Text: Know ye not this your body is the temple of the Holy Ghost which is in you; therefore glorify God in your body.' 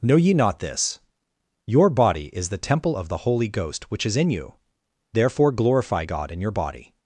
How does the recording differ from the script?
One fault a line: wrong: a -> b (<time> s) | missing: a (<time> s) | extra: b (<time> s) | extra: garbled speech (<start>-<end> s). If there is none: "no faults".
no faults